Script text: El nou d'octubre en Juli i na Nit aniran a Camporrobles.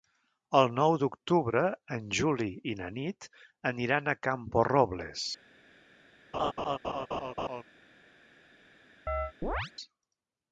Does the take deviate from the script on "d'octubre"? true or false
false